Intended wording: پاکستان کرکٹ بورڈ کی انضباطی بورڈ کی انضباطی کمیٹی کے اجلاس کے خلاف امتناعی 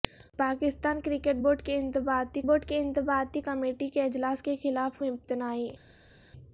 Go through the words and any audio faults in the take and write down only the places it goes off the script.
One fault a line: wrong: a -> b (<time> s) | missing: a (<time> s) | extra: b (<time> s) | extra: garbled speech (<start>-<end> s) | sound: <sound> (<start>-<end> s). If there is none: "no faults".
no faults